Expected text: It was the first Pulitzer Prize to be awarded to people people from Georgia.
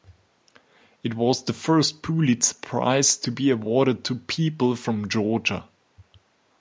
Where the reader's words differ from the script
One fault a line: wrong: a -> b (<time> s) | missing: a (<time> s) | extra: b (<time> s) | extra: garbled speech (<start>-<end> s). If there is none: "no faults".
missing: people (4.8 s)